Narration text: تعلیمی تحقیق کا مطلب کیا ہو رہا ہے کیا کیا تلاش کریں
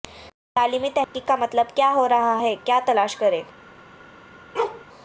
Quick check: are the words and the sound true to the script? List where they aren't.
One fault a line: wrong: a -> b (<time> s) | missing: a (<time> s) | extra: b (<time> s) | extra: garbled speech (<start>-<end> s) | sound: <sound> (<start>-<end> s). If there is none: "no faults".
sound: dropout (1.0-1.1 s)
missing: کیا (2.8 s)
sound: bark (4.5-4.8 s)